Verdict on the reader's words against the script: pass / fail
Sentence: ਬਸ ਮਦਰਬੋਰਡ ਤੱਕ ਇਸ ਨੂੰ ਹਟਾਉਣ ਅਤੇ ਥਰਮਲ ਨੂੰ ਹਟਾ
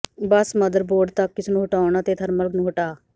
pass